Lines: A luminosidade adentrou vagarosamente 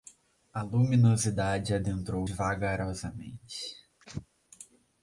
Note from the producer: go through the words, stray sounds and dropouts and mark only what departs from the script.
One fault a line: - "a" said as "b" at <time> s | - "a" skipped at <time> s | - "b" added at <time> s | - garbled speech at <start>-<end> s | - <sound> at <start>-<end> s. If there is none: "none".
- sneeze at 4.0-4.3 s